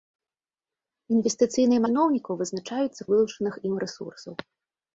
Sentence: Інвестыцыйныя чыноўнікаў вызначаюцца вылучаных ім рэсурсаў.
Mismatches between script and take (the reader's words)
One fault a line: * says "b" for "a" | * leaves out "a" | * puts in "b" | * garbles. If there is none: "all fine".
all fine